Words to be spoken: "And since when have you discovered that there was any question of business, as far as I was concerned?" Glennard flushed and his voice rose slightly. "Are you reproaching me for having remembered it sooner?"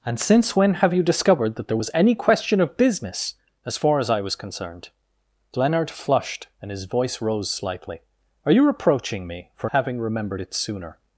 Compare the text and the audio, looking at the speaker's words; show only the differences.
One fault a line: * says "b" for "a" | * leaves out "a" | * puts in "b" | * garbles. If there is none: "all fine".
all fine